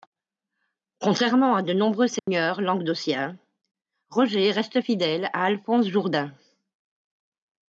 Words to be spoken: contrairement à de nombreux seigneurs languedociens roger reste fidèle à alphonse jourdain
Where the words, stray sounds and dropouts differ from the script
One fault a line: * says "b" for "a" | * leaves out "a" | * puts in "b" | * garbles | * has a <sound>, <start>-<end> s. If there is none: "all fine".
* has a dropout, 2.2-2.3 s